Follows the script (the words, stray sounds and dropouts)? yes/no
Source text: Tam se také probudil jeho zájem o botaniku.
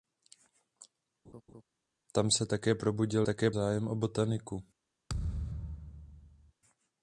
no